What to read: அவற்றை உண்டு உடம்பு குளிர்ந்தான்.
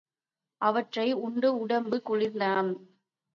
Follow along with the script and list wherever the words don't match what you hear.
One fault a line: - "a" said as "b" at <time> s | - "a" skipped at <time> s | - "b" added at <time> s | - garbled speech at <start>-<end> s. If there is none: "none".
none